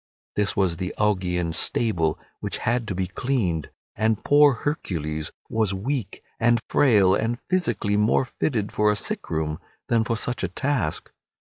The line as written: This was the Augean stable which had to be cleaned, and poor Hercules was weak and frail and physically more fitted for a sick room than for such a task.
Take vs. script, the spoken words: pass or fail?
pass